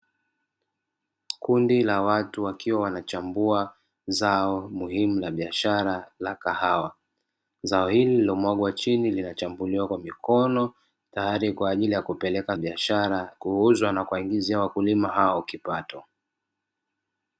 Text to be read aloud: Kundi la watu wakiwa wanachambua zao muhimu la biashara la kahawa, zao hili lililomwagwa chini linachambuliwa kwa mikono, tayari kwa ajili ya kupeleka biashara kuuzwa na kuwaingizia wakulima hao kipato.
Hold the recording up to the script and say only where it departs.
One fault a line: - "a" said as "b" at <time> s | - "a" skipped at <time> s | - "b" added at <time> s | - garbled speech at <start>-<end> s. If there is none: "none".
none